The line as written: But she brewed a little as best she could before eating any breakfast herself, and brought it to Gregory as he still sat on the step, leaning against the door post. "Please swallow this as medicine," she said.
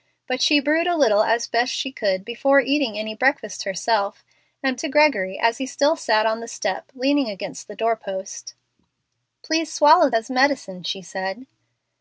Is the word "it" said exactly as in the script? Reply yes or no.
no